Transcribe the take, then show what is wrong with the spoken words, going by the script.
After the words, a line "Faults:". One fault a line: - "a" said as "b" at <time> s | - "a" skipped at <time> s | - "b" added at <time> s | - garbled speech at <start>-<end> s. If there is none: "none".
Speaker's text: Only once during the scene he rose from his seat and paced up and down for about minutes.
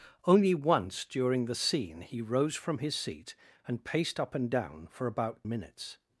Only once during the scene he rose from his seat and paced up and down for about minutes.
Faults:
none